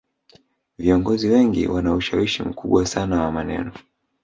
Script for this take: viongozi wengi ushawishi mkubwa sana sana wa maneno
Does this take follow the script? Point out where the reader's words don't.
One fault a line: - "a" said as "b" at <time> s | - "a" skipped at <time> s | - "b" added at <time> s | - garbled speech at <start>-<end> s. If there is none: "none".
- "wana" added at 1.7 s
- "sana" skipped at 3.2 s